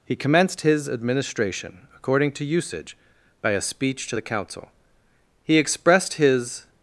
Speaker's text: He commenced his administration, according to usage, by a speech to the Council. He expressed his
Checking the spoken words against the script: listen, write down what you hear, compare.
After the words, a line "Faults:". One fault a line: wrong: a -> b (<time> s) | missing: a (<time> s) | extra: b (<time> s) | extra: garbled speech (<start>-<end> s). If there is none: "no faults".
He commenced his administration, according to usage, by a speech to the Council. He expressed his
Faults:
no faults